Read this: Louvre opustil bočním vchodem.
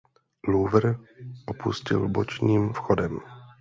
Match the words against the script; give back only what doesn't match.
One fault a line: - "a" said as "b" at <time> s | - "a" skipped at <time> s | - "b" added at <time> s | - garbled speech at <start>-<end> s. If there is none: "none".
none